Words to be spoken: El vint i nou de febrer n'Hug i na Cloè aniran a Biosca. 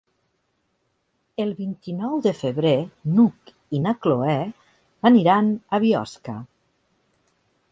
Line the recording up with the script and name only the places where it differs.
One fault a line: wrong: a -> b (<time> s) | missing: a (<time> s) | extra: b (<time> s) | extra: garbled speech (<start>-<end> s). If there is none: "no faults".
no faults